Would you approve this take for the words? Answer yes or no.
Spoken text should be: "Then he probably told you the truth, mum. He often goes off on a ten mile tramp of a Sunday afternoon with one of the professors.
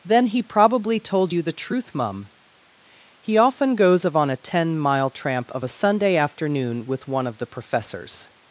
no